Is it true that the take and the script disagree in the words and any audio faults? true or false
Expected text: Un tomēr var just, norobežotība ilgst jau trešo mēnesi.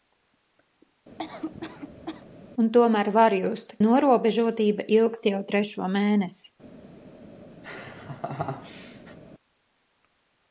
true